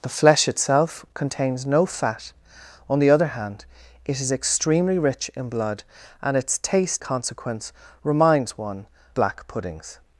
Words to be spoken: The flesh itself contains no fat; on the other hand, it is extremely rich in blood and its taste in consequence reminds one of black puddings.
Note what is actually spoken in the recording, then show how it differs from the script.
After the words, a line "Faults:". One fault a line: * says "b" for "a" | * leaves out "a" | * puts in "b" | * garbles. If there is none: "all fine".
The flesh itself contains no fat; on the other hand, it is extremely rich in blood and its taste consequence reminds one black puddings.
Faults:
* leaves out "in"
* leaves out "of"